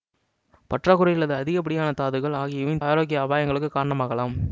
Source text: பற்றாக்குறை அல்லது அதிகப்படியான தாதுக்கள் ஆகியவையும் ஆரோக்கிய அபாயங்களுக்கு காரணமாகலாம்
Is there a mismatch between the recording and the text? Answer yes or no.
no